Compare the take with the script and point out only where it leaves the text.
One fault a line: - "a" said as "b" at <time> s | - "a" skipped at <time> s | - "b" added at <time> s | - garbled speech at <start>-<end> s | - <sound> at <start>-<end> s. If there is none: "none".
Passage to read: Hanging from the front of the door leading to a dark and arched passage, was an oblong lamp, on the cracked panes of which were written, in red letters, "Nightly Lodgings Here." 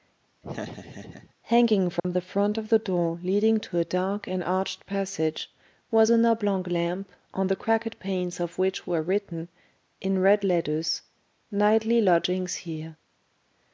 - laugh at 0.4-1.3 s
- dropout at 2.0-2.0 s